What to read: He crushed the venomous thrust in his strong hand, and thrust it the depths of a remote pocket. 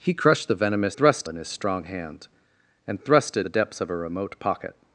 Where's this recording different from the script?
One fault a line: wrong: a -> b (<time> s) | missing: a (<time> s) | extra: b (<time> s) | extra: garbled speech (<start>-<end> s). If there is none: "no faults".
no faults